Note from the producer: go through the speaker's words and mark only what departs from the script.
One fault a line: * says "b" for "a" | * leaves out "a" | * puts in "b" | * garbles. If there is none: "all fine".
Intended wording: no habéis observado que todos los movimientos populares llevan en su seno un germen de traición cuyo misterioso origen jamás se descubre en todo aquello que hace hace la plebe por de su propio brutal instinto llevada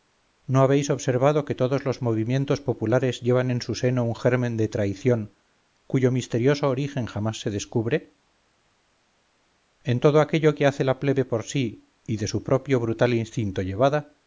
* leaves out "hace"
* puts in "sí y"